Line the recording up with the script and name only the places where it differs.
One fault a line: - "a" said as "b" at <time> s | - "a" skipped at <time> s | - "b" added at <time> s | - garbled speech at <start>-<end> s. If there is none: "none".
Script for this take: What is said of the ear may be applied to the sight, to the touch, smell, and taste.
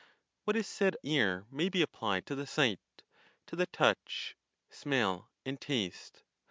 - "of the" skipped at 1.0 s